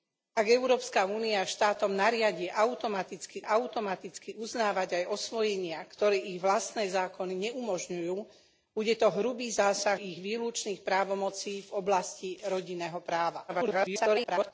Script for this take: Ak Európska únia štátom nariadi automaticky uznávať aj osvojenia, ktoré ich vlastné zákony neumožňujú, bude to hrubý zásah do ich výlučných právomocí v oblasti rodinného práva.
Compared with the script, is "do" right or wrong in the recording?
wrong